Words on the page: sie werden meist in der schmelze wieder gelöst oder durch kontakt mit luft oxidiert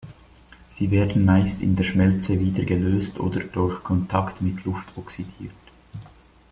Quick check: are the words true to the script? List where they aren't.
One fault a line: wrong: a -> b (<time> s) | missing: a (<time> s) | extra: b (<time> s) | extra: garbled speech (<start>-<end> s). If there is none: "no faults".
no faults